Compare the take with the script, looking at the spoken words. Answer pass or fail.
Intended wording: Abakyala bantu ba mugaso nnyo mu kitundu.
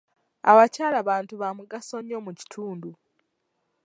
pass